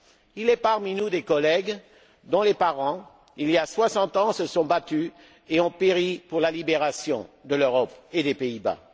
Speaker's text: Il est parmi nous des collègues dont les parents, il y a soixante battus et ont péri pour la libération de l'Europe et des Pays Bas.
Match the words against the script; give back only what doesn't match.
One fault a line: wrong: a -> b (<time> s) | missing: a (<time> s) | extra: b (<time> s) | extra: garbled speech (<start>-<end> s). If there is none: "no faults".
extra: ans se sont (4.2 s)